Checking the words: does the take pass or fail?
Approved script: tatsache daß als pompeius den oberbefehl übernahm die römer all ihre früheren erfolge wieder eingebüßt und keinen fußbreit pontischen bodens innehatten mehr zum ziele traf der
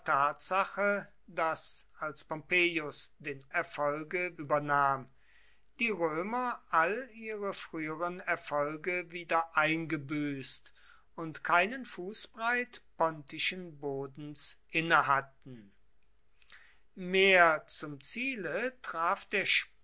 fail